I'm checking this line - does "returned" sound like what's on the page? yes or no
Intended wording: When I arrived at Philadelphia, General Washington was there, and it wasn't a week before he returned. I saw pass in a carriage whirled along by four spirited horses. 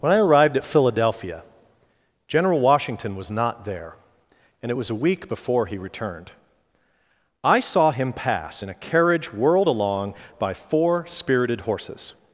yes